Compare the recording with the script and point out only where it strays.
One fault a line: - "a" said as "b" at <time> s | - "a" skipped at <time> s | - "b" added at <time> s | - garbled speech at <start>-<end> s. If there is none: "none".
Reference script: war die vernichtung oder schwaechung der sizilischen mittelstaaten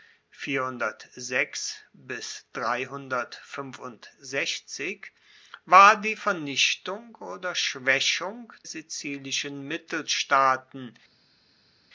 - "der" skipped at 8.5 s